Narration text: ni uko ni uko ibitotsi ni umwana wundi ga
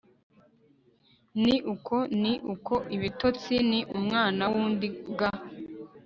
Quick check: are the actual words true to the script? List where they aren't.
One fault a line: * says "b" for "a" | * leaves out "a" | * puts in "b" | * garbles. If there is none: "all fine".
all fine